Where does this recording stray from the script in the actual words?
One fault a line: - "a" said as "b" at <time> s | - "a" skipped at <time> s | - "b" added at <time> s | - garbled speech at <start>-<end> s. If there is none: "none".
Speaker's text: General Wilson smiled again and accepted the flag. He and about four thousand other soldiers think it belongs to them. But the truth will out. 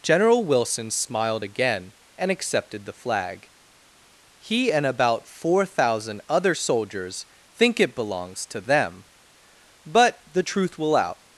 none